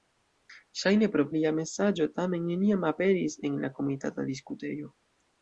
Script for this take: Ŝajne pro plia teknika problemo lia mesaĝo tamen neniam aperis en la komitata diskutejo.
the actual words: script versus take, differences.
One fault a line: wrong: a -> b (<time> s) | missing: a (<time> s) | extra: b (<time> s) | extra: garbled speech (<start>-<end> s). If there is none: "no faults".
missing: plia teknika problemo (1.2 s)